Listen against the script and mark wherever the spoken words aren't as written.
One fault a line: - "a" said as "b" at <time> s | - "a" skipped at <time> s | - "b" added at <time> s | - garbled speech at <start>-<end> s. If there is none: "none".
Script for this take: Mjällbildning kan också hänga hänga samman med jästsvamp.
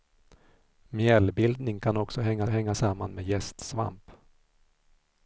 none